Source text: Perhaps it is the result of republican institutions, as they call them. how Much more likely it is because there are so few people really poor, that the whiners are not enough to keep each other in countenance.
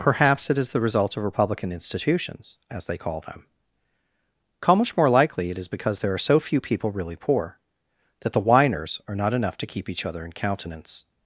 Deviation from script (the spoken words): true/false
false